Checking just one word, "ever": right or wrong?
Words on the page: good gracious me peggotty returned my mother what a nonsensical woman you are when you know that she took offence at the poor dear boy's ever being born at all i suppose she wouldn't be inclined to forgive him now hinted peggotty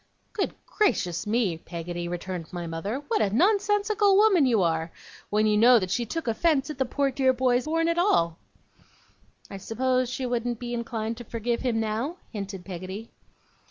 wrong